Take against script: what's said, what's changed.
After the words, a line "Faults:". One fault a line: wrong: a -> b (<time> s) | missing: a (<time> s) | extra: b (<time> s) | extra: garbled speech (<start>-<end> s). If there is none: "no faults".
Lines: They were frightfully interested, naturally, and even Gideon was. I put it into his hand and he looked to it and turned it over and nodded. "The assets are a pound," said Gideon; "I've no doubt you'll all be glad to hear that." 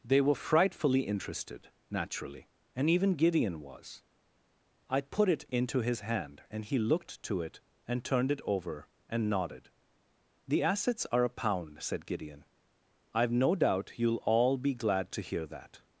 They were frightfully interested, naturally, and even Gideon was. I put it into his hand and he looked to it and turned it over and nodded. "The assets are a pound," said Gideon; "I've no doubt you'll all be glad to hear that."
Faults:
no faults